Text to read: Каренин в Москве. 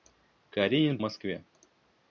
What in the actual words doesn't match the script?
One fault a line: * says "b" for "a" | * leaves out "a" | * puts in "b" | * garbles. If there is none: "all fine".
all fine